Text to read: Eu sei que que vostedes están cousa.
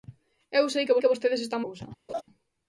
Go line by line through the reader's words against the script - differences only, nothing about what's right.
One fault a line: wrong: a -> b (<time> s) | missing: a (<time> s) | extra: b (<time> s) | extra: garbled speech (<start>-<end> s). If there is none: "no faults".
no faults